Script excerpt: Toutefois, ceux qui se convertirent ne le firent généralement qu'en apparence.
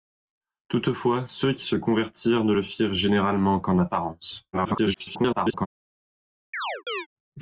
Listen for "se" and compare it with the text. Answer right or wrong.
right